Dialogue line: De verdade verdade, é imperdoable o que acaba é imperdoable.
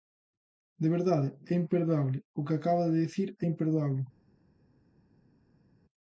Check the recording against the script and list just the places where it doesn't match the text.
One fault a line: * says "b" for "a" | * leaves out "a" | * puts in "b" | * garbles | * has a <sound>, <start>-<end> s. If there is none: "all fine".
* leaves out "verdade"
* puts in "de dicir"